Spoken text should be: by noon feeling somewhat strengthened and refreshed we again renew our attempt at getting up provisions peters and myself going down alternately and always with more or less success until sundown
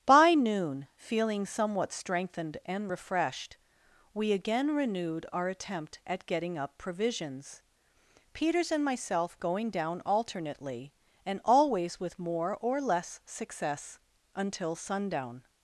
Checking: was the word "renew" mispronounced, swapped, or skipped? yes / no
yes